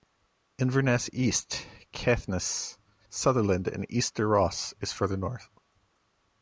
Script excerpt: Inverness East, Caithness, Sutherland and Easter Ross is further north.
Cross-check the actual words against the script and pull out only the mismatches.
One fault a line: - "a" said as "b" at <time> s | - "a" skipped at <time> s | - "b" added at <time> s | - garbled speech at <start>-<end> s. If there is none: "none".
none